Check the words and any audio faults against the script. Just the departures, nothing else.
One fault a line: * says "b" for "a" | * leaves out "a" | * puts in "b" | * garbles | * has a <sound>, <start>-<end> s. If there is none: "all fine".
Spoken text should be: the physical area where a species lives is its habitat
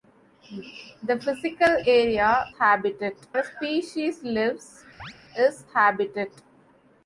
* says "habitat" for "where"
* has a chirp, 5.0-5.1 s
* leaves out "its"